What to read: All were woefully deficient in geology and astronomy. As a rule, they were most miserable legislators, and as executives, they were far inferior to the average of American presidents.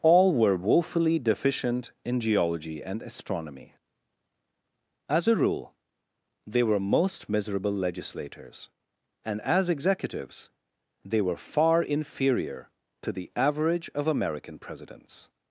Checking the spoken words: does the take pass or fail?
pass